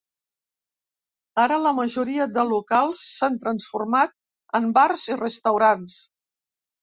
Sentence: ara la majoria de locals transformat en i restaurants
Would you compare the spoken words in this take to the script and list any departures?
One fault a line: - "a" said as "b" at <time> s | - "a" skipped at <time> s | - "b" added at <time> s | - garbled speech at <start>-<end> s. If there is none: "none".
- "s'han" added at 3.1 s
- "bars" added at 4.8 s